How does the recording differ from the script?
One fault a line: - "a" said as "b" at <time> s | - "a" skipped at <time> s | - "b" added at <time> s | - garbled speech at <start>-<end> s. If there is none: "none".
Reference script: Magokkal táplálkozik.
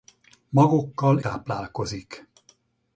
none